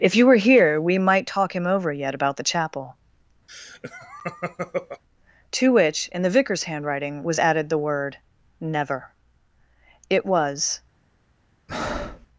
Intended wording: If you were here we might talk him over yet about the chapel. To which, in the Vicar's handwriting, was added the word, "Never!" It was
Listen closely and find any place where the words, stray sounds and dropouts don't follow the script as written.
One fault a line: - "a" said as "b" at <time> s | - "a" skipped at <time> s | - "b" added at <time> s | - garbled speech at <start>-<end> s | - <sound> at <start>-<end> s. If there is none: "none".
- laugh at 3.5-5.0 s
- breath at 11.7-12.3 s